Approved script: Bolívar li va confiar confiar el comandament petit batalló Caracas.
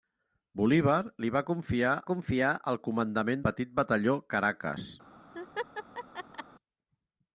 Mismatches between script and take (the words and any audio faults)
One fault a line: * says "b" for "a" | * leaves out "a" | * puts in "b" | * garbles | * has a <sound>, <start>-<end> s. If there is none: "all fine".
* has a laugh, 5.3-6.4 s